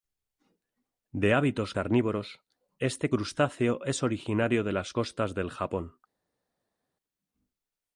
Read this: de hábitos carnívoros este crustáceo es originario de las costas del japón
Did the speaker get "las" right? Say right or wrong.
right